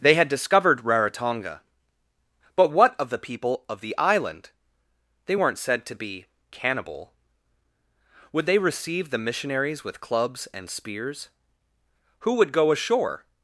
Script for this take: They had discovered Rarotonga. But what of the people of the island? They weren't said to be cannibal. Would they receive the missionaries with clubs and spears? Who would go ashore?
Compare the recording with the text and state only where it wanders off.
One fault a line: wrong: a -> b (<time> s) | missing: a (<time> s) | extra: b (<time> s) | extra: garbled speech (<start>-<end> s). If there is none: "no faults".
no faults